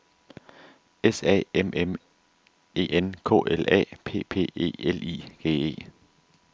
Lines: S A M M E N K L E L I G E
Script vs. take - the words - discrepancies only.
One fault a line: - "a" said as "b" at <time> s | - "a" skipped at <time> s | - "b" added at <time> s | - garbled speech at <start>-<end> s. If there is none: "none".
- "A P P" added at 3.7 s